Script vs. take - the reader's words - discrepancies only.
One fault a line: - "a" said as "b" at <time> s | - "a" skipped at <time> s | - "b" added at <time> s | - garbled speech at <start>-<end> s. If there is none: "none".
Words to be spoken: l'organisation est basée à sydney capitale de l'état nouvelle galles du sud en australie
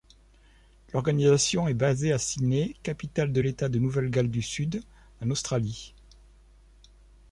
- "de" added at 3.7 s